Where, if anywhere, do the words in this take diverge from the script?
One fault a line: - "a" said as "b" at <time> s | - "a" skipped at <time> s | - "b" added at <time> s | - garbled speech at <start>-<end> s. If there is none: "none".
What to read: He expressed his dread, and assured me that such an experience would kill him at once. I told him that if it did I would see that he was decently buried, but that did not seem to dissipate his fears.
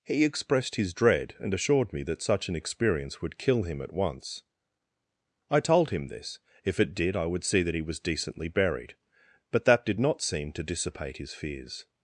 - "that" said as "this" at 6.1 s